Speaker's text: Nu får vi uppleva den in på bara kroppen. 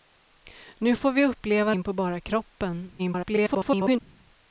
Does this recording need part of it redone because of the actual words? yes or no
yes